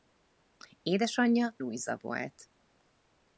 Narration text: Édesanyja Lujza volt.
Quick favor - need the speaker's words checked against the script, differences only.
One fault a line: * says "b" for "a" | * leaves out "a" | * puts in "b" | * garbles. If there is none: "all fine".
all fine